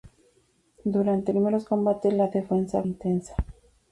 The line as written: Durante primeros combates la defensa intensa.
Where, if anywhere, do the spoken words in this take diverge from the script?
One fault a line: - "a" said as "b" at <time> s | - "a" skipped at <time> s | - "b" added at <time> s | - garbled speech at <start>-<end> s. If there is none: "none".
none